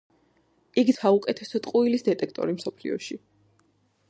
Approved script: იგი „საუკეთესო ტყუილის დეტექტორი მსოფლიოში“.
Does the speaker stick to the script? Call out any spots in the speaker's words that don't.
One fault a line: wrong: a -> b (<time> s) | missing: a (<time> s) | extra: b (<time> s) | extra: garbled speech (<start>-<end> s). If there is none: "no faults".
no faults